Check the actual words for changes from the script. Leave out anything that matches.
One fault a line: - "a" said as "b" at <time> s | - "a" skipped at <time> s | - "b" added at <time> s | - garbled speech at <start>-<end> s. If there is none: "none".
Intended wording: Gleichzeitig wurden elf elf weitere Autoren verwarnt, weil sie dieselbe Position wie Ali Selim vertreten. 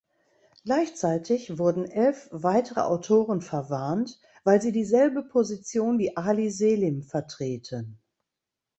- "elf" skipped at 2.3 s